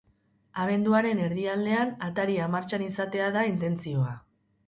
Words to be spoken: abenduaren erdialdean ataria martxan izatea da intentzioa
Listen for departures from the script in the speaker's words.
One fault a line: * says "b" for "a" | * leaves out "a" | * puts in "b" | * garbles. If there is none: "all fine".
all fine